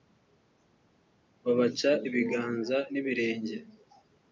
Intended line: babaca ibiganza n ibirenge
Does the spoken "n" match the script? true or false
true